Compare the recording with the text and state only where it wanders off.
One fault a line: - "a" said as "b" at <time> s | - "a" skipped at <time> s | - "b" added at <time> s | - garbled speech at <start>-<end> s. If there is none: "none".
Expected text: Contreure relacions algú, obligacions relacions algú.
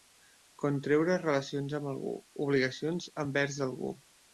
- "amb" added at 1.8 s
- "relacions" said as "envers" at 3.3 s